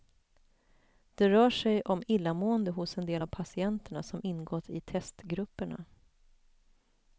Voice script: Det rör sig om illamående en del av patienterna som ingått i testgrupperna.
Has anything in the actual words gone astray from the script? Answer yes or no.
yes